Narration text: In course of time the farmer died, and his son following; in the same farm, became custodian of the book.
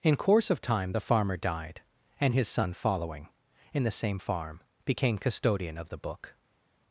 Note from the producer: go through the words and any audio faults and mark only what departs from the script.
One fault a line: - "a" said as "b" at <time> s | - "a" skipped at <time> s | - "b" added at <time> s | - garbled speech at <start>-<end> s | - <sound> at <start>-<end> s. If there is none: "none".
none